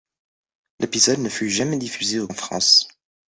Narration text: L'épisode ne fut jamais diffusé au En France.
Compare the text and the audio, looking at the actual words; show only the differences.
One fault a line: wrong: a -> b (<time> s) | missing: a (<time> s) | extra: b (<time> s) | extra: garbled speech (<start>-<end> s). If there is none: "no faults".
no faults